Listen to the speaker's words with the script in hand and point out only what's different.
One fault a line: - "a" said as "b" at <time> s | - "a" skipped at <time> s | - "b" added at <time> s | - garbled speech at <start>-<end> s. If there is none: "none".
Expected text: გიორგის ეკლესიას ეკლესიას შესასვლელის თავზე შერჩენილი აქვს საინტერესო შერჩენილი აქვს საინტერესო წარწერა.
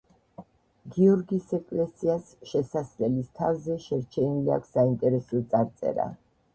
- "ეკლესიას" skipped at 2.3 s
- "შერჩენილი აქვს საინტერესო" skipped at 5.5 s